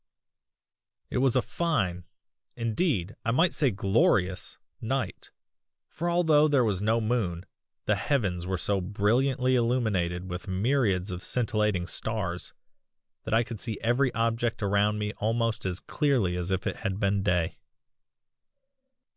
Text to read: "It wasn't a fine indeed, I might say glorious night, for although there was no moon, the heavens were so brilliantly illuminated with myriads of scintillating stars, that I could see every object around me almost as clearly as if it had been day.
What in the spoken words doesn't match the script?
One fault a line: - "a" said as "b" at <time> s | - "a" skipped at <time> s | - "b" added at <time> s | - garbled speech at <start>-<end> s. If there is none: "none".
- "wasn't" said as "was" at 1.2 s